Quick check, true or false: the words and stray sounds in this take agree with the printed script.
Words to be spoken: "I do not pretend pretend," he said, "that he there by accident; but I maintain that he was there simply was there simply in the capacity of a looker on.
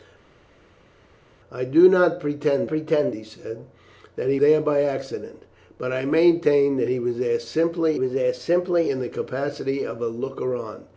true